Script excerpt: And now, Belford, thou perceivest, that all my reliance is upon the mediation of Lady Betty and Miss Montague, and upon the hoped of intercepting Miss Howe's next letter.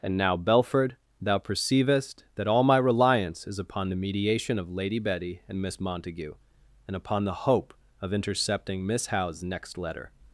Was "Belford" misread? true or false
false